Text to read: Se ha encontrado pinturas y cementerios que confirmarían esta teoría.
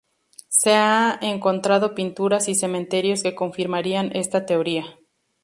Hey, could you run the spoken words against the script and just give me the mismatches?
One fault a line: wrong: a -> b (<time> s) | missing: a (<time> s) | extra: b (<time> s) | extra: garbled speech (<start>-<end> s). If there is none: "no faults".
no faults